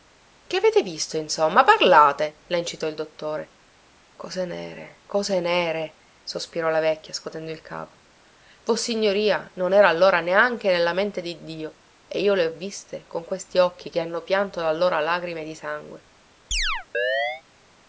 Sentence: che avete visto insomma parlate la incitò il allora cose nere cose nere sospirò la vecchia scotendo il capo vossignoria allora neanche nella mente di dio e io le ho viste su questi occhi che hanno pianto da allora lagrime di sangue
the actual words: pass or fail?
fail